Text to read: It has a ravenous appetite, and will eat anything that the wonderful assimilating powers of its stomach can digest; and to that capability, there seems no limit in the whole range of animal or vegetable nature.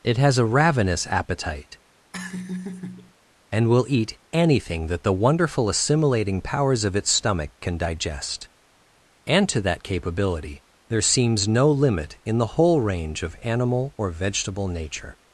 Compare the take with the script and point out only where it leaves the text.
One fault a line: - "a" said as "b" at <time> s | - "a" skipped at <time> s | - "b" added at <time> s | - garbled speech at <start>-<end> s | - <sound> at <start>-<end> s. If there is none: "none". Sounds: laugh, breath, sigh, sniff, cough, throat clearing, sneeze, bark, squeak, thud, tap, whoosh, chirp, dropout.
- laugh at 2.1-3.1 s